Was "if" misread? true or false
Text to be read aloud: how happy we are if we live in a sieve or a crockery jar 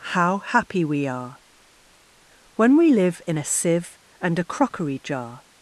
true